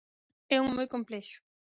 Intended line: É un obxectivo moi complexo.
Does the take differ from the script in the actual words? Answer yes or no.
yes